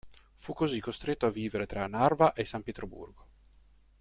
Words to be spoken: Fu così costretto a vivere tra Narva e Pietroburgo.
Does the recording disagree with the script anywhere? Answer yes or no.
yes